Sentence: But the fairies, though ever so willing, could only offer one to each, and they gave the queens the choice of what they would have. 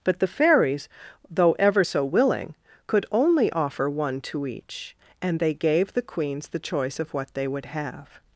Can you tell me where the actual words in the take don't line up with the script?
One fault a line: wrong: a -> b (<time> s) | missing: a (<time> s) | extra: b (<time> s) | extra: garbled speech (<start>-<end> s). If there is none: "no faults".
no faults